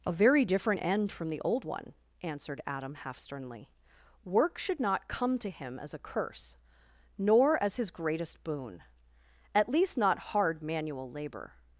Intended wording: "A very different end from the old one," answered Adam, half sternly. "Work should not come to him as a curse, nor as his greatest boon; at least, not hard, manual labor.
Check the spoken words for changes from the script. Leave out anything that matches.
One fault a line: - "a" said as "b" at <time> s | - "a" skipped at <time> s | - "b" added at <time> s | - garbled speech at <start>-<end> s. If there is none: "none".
none